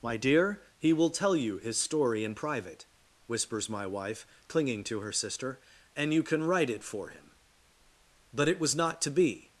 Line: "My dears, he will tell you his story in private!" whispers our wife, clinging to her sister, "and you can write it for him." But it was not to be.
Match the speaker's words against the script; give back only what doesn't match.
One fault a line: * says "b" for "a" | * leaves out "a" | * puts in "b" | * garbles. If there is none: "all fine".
* says "dear" for "dears"
* says "my" for "our"